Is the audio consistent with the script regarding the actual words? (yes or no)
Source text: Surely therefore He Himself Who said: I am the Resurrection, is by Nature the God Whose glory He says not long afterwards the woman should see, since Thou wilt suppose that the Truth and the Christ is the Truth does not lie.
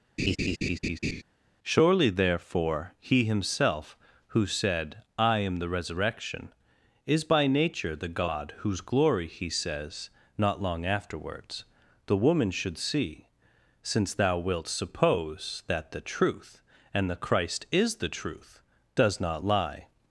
yes